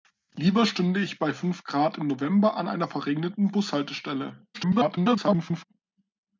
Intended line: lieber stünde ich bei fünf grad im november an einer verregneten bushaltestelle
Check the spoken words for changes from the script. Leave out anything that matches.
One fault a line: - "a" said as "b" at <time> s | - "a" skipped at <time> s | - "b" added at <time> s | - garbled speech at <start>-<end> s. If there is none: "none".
- garbled speech at 4.5-5.7 s